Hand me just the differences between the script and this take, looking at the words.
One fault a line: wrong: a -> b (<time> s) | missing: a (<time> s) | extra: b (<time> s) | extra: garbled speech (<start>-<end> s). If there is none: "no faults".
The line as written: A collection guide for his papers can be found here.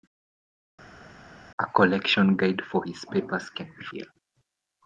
missing: found (3.8 s)